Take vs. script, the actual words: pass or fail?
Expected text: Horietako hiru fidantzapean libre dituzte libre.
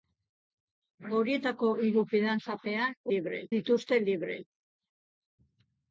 pass